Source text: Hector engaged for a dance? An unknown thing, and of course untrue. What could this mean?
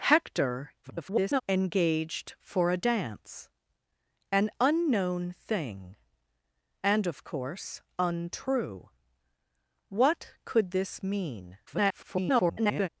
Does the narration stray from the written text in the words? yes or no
yes